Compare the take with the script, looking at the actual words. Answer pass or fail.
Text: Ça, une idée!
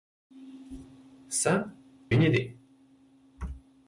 pass